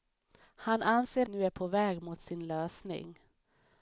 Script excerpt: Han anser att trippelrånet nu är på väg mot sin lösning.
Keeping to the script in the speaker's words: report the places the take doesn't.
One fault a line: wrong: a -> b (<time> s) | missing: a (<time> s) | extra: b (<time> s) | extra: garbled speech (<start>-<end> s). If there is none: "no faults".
missing: att trippelrånet (1.3 s)